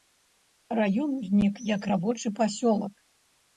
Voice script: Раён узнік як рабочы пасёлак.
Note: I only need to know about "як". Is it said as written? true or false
true